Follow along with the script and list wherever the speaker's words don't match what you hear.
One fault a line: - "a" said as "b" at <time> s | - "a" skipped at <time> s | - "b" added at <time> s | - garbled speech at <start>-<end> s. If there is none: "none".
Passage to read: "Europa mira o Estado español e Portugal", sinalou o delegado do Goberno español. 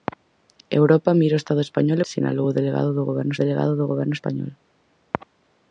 - "e Portugal sinalou o" said as "sinalou o delegado do Goberno" at 2.1 s